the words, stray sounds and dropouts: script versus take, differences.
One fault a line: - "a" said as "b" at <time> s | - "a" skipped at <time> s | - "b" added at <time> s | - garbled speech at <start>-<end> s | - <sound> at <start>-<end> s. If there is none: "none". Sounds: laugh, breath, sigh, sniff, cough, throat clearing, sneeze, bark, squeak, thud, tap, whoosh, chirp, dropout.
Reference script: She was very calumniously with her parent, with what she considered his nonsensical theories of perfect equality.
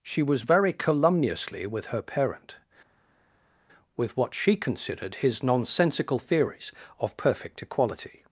none